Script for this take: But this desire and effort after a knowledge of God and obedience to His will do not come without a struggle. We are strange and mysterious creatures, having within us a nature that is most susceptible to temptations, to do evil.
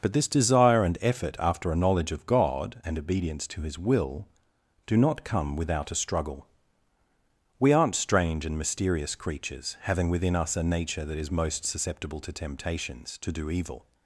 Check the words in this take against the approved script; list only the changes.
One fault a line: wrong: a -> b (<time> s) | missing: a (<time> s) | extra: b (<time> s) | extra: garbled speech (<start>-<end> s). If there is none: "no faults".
wrong: are -> aren't (7.7 s)